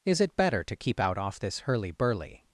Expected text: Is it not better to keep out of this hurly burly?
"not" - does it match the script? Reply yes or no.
no